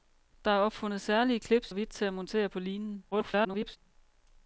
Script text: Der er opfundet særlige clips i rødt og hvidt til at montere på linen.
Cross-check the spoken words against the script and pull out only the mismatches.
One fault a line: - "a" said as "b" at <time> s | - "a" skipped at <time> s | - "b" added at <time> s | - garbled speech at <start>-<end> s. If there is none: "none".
- "i rødt" skipped at 1.7 s
- garbled speech at 3.1-3.8 s